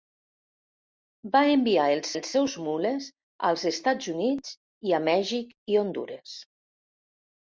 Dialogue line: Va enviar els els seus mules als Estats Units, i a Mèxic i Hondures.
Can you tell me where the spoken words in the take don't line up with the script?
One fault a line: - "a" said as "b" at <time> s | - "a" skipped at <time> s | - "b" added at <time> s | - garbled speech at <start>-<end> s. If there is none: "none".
none